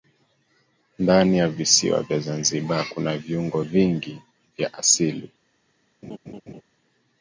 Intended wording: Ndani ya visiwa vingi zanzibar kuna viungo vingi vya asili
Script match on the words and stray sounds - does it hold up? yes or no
no